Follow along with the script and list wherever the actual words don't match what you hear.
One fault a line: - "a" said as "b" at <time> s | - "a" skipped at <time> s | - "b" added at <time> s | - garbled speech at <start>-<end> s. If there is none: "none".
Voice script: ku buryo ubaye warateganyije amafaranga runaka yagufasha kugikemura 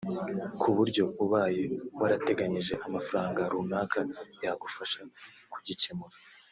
none